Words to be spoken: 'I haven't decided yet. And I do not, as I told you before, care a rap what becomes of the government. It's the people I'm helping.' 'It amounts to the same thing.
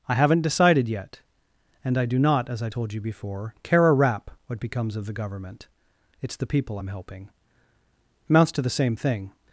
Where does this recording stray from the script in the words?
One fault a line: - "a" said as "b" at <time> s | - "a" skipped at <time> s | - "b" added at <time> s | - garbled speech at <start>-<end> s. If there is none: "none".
- "It" skipped at 7.3 s